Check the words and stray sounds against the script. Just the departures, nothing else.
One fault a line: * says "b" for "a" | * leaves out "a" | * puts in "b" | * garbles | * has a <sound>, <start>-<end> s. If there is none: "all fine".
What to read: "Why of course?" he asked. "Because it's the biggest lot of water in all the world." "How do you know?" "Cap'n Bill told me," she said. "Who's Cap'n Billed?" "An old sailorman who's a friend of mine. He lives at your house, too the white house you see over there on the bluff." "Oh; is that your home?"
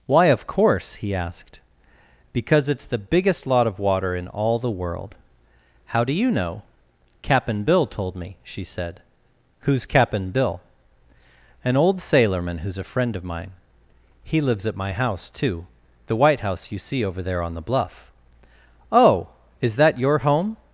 * says "Bill" for "Billed"
* says "my" for "your"